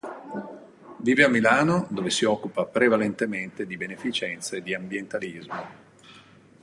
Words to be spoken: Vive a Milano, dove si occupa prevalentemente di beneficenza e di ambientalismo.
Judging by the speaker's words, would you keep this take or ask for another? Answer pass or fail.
pass